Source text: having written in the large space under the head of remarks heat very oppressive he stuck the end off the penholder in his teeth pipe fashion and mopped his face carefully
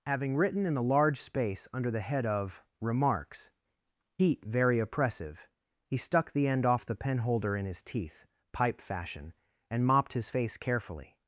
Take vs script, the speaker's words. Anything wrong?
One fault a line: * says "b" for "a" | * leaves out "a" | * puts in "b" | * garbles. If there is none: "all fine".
all fine